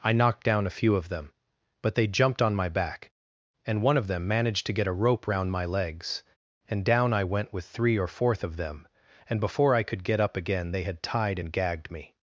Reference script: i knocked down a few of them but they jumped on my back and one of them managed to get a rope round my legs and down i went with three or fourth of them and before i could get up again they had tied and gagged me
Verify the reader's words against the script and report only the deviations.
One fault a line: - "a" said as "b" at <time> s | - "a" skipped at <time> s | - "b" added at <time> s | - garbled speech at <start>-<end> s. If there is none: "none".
none